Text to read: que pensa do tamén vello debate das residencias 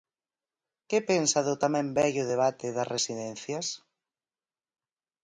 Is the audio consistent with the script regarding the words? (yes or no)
yes